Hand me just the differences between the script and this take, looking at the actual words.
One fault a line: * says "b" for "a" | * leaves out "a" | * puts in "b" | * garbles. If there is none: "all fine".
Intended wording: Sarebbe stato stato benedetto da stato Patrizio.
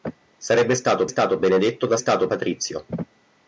all fine